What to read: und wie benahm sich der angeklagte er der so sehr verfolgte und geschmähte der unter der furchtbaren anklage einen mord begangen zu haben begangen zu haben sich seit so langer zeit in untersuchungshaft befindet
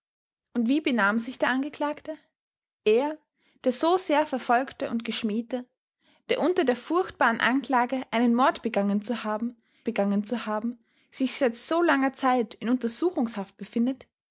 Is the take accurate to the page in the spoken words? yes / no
yes